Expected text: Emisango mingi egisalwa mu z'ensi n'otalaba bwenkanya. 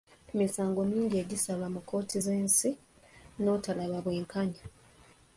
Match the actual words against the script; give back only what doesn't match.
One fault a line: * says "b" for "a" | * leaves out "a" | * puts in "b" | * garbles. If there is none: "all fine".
* puts in "kkooti"